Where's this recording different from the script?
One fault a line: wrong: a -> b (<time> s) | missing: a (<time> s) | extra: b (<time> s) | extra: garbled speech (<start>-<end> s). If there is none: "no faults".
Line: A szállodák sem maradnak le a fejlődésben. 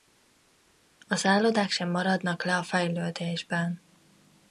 no faults